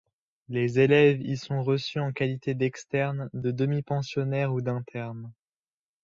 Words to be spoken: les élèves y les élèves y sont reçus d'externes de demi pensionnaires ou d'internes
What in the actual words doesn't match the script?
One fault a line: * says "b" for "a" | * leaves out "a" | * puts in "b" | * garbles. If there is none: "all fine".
* says "sont reçus en qualité" for "les élèves y sont reçus"